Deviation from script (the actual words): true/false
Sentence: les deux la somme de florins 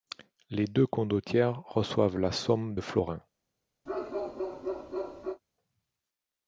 true